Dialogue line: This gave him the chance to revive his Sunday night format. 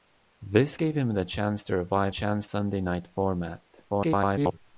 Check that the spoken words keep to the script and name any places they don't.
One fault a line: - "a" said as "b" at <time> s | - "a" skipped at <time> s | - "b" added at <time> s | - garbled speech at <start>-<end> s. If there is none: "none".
- "his" said as "chance" at 2.1 s
- garbled speech at 3.9-4.6 s